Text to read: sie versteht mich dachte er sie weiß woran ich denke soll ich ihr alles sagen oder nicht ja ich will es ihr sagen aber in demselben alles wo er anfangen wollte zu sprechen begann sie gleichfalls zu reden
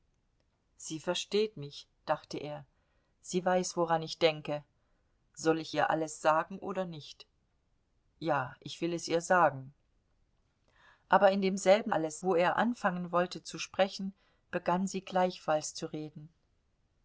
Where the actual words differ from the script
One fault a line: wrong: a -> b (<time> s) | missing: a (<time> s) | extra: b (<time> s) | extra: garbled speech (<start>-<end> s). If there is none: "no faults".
no faults